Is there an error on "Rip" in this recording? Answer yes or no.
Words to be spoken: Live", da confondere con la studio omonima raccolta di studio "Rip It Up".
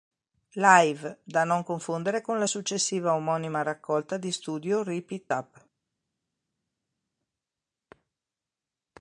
no